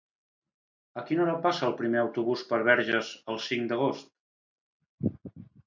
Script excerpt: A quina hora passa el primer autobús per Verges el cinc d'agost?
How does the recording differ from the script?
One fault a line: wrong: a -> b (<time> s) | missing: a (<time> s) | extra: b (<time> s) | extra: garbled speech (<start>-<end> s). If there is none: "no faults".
no faults